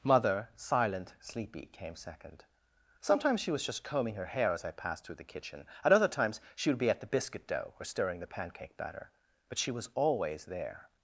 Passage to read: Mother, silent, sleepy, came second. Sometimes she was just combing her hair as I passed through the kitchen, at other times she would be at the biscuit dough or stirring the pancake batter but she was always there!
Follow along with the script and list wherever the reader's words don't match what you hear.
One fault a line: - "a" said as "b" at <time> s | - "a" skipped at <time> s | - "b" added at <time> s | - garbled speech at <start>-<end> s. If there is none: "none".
none